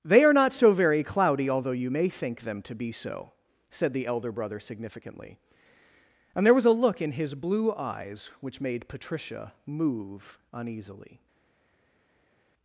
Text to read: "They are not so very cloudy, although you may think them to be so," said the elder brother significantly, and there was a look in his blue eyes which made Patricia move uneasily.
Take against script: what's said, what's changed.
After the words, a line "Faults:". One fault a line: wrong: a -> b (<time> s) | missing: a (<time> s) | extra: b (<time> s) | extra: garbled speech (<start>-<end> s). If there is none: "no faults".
"They are not so very cloudy, although you may think them to be so," said the elder brother significantly, and there was a look in his blue eyes which made Patricia move uneasily.
Faults:
no faults